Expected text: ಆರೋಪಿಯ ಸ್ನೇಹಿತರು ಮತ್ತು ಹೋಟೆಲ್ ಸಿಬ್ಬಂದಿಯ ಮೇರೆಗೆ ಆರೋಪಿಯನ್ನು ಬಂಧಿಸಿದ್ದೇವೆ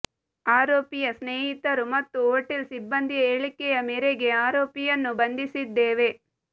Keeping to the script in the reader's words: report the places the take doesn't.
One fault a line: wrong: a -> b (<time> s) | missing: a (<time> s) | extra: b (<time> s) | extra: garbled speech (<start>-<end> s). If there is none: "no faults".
extra: ಹೇಳಿಕೆಯ (3.3 s)